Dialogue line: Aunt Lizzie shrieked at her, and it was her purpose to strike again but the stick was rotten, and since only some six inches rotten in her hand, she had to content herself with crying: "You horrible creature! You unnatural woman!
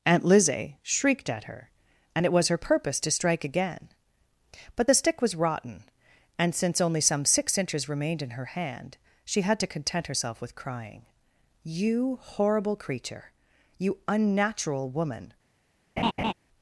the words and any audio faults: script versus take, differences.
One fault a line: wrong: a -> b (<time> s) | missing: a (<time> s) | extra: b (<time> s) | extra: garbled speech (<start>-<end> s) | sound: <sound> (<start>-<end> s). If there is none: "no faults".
wrong: rotten -> remained (7.9 s)
sound: laugh (16.0-16.3 s)